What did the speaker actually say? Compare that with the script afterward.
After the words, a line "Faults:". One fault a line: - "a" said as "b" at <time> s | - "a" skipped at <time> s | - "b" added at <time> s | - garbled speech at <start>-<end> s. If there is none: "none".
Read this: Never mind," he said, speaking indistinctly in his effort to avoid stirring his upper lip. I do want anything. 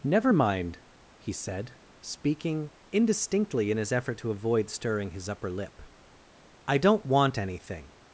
Never mind," he said, speaking indistinctly in his effort to avoid stirring his upper lip. I don't want anything.
Faults:
- "do" said as "don't" at 6.8 s